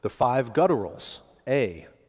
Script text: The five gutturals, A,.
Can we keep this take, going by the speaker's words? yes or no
yes